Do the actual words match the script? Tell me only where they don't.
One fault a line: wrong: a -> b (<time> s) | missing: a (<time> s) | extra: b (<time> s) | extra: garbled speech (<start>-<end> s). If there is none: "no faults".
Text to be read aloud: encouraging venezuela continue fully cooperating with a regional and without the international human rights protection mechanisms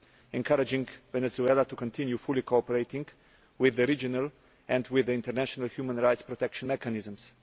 extra: to (1.6 s)
wrong: a -> the (3.8 s)
wrong: without -> with (4.9 s)